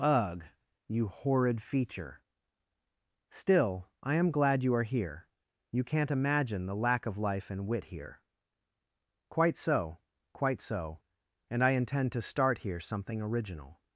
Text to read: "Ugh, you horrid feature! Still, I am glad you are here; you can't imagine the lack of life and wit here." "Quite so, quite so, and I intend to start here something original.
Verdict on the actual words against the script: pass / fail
pass